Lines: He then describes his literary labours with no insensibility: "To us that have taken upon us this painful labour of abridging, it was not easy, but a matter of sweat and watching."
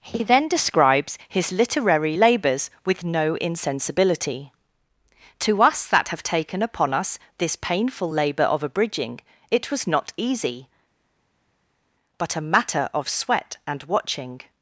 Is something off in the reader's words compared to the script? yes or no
no